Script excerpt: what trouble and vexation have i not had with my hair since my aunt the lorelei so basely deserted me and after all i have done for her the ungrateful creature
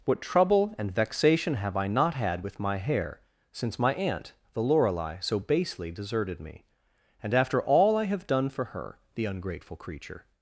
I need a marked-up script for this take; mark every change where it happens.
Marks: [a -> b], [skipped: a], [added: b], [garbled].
what trouble and vexation have i not had with my hair since my aunt the lorelei so basely deserted me and after all i have done for her the ungrateful creature